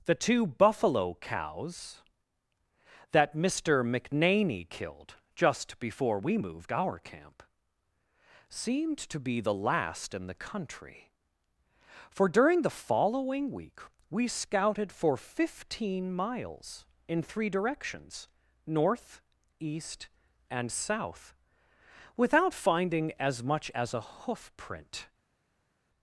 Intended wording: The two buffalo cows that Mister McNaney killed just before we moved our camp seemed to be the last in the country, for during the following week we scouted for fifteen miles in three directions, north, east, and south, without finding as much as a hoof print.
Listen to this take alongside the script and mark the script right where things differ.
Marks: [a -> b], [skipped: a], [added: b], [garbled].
The two buffalo cows that Mister McNaney killed just before we moved our camp seemed to be the last in the country, for during the following week we scouted for fifteen miles in three directions, north, east, and south, without finding as much as a hoof print.